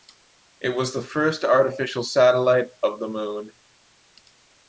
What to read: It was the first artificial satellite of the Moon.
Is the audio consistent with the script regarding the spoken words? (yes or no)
yes